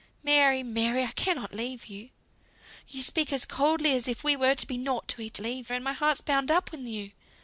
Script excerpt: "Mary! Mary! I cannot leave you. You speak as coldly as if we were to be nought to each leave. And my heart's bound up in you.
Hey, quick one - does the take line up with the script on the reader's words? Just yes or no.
yes